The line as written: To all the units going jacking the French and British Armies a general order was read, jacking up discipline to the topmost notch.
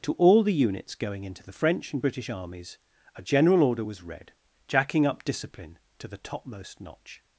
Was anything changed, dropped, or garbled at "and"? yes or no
no